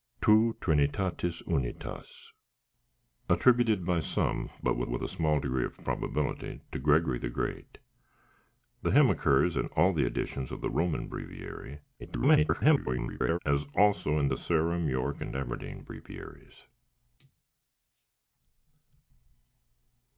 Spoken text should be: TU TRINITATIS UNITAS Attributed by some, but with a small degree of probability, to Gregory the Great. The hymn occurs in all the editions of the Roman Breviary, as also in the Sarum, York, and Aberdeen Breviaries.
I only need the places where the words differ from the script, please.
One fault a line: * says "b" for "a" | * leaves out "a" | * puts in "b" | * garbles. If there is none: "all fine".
* puts in "with"
* garbles